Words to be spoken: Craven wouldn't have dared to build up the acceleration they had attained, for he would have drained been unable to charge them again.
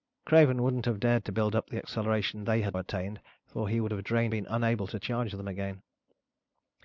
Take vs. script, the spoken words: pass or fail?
pass